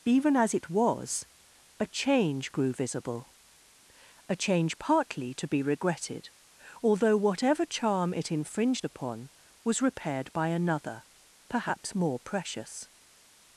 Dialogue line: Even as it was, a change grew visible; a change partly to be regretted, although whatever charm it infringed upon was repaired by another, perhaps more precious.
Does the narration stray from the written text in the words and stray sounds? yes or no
no